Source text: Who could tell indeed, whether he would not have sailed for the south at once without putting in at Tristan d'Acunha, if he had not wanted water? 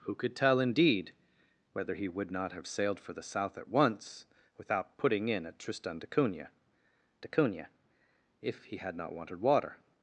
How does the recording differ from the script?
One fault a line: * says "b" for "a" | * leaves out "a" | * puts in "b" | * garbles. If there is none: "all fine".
* puts in "d'Acunha"